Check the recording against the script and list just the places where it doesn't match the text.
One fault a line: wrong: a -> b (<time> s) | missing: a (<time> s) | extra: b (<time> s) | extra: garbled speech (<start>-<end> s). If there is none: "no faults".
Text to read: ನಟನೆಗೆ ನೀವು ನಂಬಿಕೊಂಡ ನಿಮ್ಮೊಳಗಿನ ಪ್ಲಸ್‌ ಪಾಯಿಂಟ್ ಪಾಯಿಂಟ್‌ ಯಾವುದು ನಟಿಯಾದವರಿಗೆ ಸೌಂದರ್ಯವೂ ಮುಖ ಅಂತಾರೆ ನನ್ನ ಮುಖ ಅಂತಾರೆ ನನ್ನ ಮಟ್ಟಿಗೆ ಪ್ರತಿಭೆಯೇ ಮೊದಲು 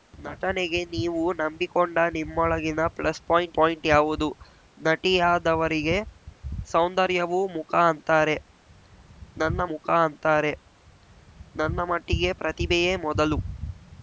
no faults